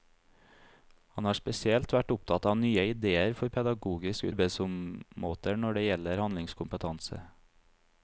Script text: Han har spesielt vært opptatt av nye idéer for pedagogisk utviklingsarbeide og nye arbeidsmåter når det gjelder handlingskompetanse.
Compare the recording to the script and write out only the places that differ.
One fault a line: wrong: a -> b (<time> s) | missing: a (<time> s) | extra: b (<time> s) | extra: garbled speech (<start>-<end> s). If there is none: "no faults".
missing: utviklingsarbeide og nye (4.3 s)